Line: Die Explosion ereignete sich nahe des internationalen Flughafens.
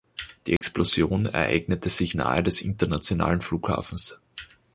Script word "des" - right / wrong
right